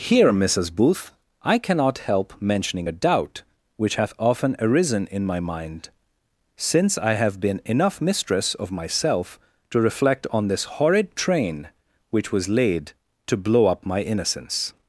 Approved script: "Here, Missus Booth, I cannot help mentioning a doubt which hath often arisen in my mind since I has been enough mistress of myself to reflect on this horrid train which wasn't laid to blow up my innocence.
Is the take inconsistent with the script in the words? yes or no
yes